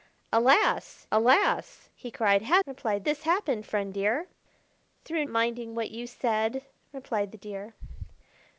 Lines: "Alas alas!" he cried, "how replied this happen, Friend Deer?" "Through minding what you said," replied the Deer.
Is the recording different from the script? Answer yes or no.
no